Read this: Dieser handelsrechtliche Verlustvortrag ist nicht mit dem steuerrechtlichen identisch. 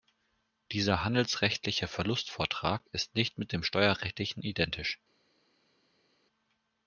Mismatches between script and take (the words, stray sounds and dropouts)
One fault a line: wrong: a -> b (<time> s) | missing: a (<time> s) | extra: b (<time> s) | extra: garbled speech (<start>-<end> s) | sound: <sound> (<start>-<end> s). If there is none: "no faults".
no faults